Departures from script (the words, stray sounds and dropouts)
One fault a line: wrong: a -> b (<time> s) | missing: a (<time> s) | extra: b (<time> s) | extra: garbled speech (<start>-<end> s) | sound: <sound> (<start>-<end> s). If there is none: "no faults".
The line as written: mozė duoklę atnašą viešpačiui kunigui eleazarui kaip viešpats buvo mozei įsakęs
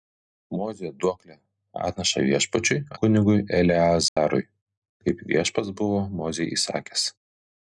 sound: dropout (4.1-4.2 s)